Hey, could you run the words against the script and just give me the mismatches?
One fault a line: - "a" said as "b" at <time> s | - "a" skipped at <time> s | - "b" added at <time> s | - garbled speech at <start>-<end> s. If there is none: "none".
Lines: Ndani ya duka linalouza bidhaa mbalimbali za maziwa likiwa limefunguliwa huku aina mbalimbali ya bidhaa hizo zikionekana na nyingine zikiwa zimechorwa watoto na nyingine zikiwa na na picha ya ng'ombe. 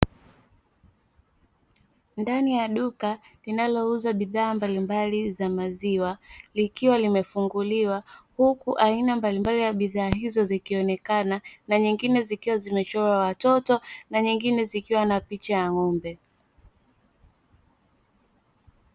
- "na" skipped at 15.2 s